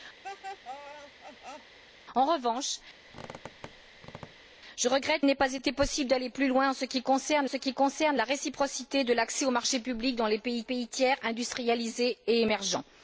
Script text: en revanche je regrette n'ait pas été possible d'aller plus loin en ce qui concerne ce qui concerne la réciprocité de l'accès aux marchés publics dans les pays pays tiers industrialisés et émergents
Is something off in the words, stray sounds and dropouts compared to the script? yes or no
yes